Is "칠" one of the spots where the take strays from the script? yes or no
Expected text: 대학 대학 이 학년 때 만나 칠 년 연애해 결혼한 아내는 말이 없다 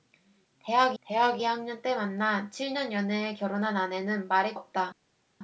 no